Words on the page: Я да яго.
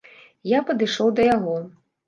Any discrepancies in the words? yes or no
yes